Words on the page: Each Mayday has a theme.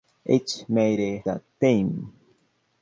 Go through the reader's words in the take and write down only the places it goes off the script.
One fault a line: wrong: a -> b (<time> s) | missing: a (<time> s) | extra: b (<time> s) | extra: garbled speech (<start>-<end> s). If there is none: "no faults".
missing: has (1.2 s)